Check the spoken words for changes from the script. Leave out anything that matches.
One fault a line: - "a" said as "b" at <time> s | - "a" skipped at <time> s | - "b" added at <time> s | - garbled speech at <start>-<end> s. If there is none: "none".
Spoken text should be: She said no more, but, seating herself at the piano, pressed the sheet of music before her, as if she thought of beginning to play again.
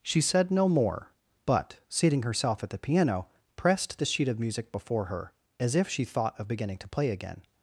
none